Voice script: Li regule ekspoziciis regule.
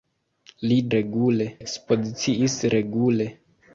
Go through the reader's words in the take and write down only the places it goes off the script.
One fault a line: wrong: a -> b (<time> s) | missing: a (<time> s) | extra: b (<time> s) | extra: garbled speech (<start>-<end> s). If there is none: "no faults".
no faults